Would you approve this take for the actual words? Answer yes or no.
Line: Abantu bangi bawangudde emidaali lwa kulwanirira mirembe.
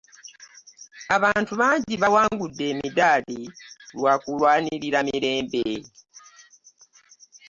yes